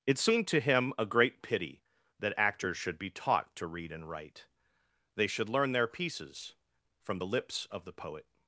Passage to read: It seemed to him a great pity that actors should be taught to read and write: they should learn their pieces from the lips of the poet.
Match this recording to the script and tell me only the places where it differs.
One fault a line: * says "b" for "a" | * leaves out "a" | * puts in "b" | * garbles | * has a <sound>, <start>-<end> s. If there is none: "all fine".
all fine